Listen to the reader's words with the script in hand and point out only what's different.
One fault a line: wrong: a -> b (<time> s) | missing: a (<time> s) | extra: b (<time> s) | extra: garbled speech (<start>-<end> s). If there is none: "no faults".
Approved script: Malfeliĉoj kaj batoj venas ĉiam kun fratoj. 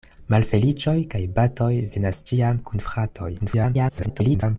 extra: garbled speech (3.4-4.6 s)